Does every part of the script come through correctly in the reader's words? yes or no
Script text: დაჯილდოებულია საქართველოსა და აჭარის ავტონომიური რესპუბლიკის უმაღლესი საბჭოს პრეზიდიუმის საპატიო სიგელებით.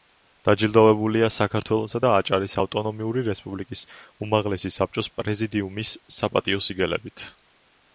yes